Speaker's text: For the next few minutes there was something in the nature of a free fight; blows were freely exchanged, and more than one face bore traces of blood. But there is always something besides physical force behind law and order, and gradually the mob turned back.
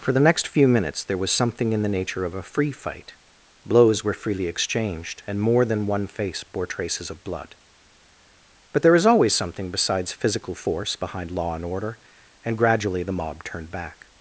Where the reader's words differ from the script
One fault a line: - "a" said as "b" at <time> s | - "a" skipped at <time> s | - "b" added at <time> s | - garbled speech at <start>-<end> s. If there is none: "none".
none